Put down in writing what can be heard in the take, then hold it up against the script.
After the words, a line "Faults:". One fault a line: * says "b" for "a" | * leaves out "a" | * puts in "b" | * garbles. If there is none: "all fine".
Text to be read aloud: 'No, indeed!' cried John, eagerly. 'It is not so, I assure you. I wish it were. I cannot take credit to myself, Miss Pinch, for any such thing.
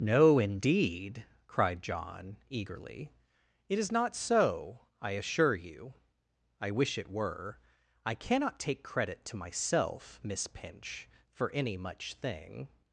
'No, indeed!' cried John, eagerly. 'It is not so, I assure you. I wish it were. I cannot take credit to myself, Miss Pinch, for any much thing.
Faults:
* says "much" for "such"